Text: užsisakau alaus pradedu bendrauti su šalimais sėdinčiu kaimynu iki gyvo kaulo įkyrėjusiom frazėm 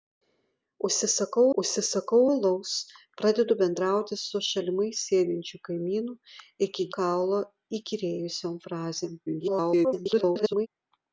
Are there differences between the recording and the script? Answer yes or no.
yes